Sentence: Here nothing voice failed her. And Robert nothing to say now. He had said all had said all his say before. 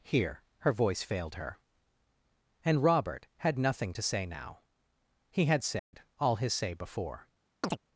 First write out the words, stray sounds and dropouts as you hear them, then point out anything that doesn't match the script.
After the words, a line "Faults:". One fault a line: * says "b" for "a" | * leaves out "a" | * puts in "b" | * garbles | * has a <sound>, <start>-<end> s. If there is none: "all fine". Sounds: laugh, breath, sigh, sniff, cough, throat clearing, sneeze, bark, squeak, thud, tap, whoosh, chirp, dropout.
Here her voice failed her. And Robert had nothing to say now. He had said all his say before.
Faults:
* says "her" for "nothing"
* puts in "had"
* has a dropout, 5.8-5.9 s
* leaves out "had said all"
* has a chirp, 7.6-7.8 s